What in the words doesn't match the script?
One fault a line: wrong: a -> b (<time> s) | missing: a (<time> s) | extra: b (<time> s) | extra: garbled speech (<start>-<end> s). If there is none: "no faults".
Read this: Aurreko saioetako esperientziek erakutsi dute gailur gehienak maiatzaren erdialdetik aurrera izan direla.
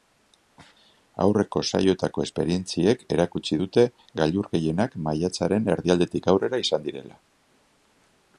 no faults